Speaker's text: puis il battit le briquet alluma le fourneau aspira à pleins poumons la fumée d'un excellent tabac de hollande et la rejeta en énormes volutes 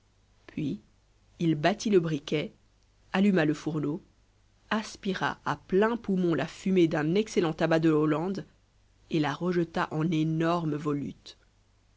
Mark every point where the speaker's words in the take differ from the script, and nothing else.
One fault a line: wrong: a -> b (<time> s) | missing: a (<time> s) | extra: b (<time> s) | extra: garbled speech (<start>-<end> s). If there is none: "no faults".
no faults